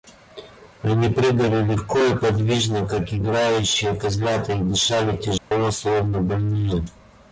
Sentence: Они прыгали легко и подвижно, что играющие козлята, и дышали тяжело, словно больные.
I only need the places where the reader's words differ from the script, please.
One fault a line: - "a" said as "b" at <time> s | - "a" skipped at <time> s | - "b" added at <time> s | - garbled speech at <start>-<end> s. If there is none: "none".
- "что" said as "как" at 2.9 s